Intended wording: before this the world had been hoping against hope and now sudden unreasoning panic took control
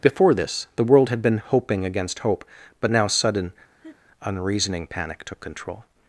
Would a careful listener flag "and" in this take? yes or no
yes